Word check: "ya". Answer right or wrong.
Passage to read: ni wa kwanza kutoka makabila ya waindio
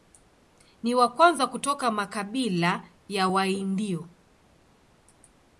right